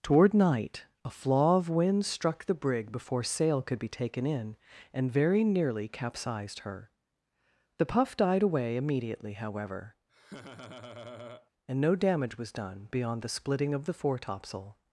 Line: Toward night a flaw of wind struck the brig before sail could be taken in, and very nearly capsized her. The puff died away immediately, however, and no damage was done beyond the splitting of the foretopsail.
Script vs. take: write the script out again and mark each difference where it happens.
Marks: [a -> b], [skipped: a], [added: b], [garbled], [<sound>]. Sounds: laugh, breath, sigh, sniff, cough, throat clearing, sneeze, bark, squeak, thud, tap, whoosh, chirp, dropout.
Toward night a flaw of wind struck the brig before sail could be taken in, and very nearly capsized her. The puff died away immediately, however, [laugh] and no damage was done beyond the splitting of the foretopsail.